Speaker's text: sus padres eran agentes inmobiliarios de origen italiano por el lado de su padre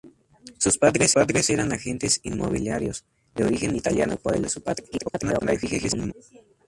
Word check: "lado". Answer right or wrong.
wrong